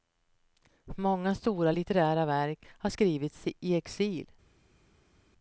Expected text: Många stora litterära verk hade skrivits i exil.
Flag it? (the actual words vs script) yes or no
yes